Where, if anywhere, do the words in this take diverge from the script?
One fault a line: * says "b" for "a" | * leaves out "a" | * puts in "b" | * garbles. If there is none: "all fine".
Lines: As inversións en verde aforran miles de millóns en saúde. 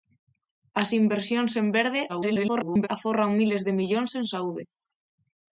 * garbles